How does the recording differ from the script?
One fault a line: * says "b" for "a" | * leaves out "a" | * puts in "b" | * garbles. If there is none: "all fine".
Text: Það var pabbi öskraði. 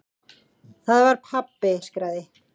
all fine